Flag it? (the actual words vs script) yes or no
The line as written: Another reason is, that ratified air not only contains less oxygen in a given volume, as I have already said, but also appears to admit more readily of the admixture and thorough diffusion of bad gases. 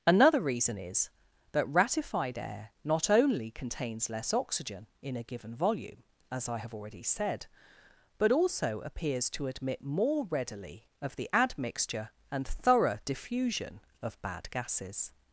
no